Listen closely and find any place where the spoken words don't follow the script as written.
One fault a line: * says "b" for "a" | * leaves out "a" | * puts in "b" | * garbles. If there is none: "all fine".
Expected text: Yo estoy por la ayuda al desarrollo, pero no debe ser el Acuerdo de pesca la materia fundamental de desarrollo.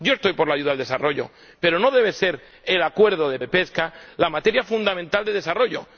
* puts in "de"